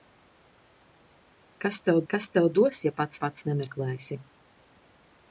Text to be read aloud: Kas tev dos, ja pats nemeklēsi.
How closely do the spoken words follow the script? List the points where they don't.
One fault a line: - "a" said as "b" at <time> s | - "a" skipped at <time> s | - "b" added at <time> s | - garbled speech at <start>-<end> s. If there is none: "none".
- "kas tev" added at 2.1 s
- "pats" added at 3.2 s